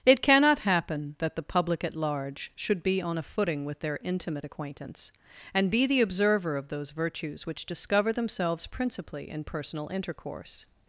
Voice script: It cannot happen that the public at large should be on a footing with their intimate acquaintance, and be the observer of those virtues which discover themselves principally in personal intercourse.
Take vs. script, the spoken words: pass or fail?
pass